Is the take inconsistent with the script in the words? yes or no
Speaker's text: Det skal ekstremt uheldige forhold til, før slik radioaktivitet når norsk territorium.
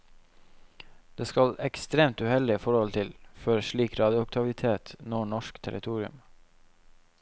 no